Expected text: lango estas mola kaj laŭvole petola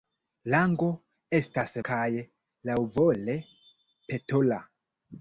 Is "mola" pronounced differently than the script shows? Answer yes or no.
yes